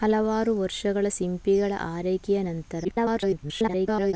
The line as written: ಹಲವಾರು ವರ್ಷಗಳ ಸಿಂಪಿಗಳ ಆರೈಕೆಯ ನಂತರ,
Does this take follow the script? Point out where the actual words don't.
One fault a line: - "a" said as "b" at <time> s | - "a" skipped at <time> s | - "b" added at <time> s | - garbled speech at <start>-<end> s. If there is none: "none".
- garbled speech at 2.8-4.1 s